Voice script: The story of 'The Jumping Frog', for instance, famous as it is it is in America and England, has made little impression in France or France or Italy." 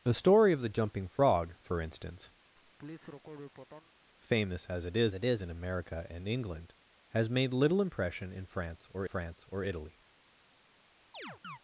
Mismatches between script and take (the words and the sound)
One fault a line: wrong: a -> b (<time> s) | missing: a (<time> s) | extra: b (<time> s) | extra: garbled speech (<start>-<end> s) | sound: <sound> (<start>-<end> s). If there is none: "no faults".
sound: laugh (2.5-3.9 s)
sound: chirp (11.1-11.6 s)